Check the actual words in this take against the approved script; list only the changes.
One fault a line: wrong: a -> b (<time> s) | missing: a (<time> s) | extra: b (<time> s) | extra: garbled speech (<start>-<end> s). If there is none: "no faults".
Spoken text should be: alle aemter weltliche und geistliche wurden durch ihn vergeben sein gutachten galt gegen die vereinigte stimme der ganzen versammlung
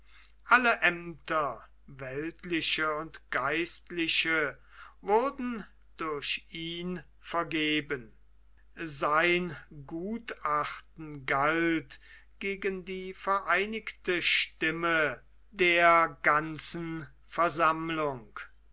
no faults